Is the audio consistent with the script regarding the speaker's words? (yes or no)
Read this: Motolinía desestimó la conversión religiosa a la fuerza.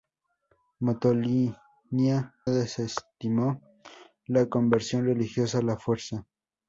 yes